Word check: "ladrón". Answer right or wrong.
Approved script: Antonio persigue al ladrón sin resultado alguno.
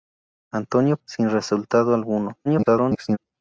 wrong